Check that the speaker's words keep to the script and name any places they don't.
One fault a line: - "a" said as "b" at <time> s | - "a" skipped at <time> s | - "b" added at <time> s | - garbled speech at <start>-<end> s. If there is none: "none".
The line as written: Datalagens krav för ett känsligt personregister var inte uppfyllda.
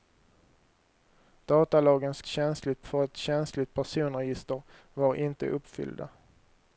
- "krav" said as "känsligt" at 2.2 s